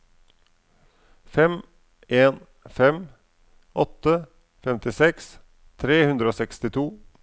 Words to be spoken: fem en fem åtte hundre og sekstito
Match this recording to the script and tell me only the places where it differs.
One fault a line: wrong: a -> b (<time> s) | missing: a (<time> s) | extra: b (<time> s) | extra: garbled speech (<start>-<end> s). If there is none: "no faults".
extra: femtiseks tre (4.7 s)